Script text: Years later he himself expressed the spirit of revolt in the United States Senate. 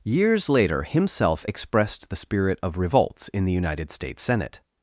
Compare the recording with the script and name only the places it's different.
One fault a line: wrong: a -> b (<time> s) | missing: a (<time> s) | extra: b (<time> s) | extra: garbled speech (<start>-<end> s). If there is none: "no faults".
missing: he (0.8 s)
wrong: revolt -> revolts (2.8 s)